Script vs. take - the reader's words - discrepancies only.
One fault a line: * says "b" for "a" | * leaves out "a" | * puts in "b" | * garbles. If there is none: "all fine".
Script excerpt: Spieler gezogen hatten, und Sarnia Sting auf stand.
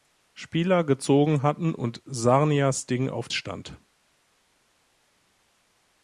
all fine